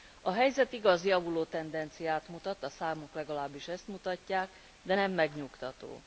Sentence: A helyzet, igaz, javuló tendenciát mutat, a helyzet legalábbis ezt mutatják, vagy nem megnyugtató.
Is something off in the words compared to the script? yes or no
yes